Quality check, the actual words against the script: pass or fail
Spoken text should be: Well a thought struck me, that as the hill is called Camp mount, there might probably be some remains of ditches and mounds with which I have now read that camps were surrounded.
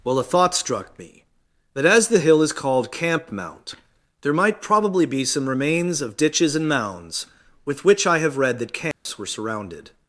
fail